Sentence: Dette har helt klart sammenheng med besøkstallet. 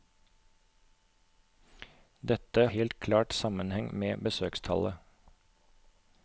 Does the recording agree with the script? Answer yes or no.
no